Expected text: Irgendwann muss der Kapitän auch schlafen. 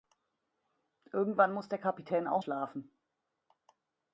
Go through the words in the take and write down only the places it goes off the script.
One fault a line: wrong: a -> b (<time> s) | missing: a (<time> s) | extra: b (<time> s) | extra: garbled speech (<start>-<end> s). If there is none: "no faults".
no faults